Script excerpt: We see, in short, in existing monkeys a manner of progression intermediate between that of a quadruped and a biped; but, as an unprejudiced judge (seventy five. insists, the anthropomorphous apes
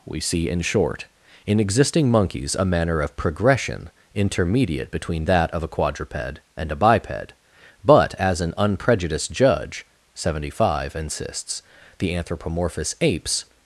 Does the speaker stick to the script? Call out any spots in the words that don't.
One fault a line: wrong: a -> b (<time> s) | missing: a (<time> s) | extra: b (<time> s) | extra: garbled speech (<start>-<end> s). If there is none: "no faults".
no faults